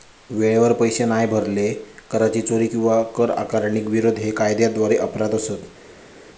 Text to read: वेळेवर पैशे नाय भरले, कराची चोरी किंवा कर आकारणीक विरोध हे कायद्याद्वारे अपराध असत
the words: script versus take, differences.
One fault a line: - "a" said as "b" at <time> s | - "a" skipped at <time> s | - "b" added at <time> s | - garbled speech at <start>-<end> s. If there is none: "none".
none